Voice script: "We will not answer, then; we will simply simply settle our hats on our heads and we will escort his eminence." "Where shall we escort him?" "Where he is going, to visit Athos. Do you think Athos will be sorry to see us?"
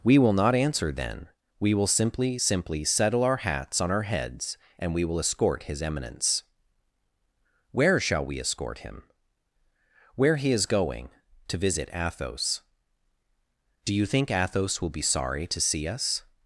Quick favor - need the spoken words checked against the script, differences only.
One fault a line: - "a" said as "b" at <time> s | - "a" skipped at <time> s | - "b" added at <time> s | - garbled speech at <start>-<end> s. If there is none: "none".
none